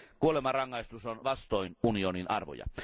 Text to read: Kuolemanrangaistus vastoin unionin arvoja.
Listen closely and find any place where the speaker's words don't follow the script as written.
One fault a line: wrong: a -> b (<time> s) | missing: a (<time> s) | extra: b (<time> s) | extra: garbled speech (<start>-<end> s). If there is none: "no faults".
extra: on (1.1 s)